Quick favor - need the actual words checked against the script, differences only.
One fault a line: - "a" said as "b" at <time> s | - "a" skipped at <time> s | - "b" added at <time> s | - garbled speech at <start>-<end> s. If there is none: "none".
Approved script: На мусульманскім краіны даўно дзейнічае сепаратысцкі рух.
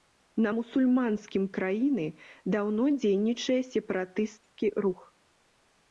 none